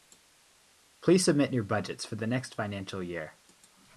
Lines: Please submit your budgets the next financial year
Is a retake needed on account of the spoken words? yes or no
yes